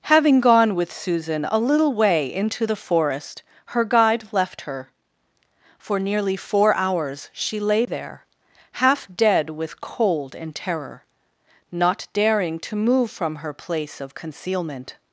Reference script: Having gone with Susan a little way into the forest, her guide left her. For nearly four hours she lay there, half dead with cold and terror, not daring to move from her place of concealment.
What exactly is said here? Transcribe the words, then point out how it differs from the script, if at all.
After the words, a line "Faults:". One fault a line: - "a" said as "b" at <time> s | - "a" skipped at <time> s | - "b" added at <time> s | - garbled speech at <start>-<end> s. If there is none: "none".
Having gone with Susan a little way into the forest, her guide left her. For nearly four hours she lay there, half dead with cold and terror, not daring to move from her place of concealment.
Faults:
none